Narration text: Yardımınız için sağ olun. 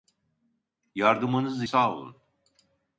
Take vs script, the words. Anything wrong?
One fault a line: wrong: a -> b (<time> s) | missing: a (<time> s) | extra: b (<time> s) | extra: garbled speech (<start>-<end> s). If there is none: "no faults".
missing: için (1.6 s)